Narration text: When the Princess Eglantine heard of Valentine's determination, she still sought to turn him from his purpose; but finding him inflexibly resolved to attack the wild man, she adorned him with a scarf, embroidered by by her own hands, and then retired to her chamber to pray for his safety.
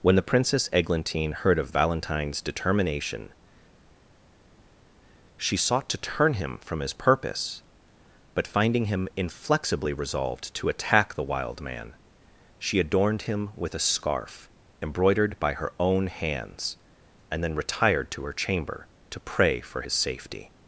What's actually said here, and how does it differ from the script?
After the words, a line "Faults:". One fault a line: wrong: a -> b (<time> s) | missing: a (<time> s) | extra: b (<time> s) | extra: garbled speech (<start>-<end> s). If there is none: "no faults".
When the Princess Eglantine heard of Valentine's determination, she sought to turn him from his purpose; but finding him inflexibly resolved to attack the wild man, she adorned him with a scarf, embroidered by her own hands, and then retired to her chamber to pray for his safety.
Faults:
missing: still (5.6 s)
missing: by (15.5 s)